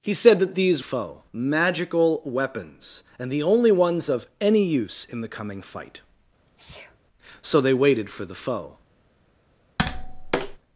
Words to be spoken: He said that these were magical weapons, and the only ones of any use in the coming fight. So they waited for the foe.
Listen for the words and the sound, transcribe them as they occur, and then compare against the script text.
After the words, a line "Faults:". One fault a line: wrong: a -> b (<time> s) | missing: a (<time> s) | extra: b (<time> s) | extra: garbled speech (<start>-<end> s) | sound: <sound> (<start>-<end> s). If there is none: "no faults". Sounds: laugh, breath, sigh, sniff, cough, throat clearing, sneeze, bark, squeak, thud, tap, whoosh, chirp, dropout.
He said that these foe magical weapons, and the only ones of any use in the coming fight. So they waited for the foe.
Faults:
wrong: were -> foe (0.8 s)
sound: sneeze (6.5-7.0 s)
sound: tap (9.8-10.6 s)